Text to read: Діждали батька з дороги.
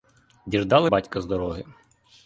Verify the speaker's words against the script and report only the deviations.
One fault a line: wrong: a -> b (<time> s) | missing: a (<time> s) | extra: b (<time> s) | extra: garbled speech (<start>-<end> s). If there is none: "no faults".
no faults